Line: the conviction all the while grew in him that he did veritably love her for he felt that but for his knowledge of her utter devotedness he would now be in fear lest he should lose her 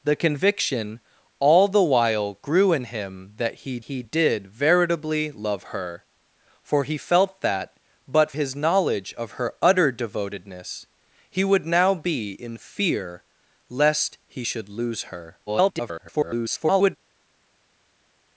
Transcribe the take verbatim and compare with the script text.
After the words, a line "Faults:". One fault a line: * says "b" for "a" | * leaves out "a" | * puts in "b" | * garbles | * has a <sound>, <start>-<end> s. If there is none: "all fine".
the conviction all the while grew in him that he he did veritably love her for he felt that but his knowledge of her utter devotedness he would now be in fear lest he should lose her [garbled]
Faults:
* puts in "he"
* leaves out "for"
* garbles